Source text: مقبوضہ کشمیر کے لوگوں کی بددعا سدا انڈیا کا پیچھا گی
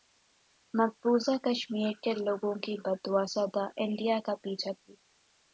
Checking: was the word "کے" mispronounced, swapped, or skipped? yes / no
no